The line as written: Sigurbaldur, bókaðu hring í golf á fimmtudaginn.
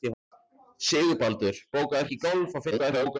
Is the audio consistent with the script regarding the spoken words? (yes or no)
no